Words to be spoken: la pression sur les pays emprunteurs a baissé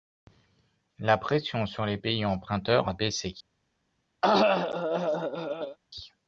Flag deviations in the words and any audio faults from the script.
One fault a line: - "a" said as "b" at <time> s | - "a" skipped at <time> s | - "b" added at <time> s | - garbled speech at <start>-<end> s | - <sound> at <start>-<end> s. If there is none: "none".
- cough at 4.2-5.8 s